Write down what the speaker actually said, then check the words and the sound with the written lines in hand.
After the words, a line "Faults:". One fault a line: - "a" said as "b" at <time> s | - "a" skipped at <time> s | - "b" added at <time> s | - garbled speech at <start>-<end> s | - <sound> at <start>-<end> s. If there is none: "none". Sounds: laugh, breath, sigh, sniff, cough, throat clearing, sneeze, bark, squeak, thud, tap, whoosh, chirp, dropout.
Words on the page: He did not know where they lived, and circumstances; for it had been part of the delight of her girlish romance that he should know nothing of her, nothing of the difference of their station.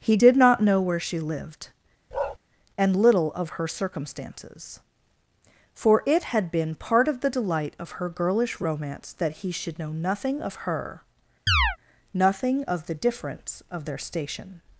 He did not know where she lived, and little of her circumstances; for it had been part of the delight of her girlish romance that he should know nothing of her, nothing of the difference of their station.
Faults:
- "they" said as "she" at 1.0 s
- bark at 2.1-2.4 s
- "little of her" added at 2.9 s
- chirp at 11.5-11.8 s